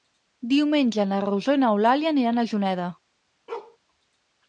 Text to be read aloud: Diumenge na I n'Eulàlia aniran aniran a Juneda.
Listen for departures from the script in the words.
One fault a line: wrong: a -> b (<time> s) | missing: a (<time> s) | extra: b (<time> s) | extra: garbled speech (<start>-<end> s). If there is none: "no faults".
extra: Rosó (1.3 s)
missing: aniran (2.4 s)